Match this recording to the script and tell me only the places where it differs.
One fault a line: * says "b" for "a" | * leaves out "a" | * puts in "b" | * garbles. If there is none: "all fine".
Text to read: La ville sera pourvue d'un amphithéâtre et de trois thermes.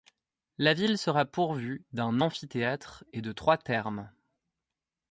all fine